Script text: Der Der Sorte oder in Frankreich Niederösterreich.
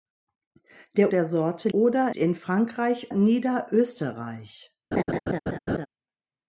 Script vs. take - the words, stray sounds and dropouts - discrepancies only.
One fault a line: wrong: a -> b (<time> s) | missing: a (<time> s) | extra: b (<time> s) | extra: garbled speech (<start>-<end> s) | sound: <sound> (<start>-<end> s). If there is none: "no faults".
sound: laugh (4.9-5.9 s)